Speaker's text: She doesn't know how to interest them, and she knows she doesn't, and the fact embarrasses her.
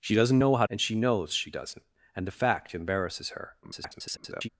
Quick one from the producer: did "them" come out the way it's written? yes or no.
no